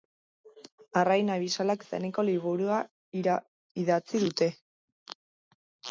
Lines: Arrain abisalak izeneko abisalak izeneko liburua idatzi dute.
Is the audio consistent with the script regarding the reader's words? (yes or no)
no